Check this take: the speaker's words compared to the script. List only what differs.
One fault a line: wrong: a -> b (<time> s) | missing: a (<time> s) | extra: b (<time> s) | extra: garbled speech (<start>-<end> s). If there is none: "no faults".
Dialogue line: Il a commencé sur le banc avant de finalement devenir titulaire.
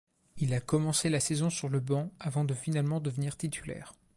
extra: la saison (1.1 s)